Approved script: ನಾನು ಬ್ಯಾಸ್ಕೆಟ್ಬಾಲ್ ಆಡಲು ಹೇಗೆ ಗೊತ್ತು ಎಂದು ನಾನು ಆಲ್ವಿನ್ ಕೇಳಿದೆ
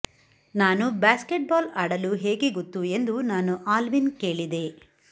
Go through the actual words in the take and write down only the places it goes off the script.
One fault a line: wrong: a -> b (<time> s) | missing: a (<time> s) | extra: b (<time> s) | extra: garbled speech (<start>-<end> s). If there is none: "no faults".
no faults